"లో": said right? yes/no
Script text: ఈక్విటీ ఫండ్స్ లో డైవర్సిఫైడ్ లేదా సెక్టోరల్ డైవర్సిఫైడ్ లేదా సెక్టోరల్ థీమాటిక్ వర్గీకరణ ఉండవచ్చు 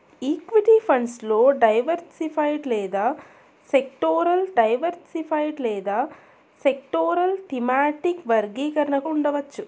yes